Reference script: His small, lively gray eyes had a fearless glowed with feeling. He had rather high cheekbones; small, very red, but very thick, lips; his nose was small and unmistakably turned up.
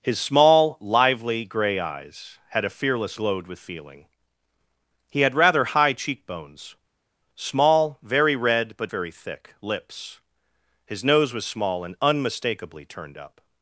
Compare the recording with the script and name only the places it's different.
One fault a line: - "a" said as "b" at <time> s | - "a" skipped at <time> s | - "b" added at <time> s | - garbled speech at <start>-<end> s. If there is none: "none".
none